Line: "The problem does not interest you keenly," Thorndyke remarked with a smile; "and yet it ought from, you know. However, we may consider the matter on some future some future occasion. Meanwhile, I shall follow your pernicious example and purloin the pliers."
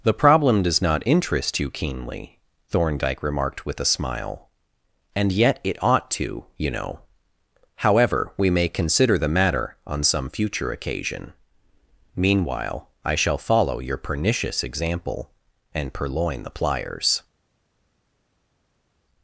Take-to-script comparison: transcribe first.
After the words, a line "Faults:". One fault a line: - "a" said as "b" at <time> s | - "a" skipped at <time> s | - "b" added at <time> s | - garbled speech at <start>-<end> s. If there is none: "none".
"The problem does not interest you keenly," Thorndyke remarked with a smile; "and yet it ought to, you know. However, we may consider the matter on some future occasion. Meanwhile, I shall follow your pernicious example and purloin the pliers."
Faults:
- "from" said as "to" at 6.1 s
- "some future" skipped at 10.7 s